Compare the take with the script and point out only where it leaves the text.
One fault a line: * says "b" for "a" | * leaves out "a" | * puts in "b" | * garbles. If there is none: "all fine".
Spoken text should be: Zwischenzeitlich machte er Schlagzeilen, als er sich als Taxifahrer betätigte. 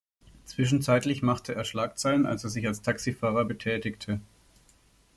all fine